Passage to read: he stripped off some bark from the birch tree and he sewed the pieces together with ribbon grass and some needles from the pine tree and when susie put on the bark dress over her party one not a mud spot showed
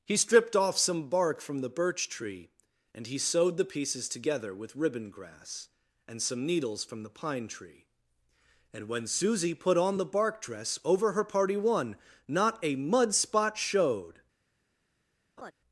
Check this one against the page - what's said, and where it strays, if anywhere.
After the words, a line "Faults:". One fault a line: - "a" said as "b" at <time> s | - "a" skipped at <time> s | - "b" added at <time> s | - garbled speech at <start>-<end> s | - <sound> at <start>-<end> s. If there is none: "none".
he stripped off some bark from the birch tree and he sewed the pieces together with ribbon grass and some needles from the pine tree and when susie put on the bark dress over her party one not a mud spot showed
Faults:
- laugh at 15.4-15.5 s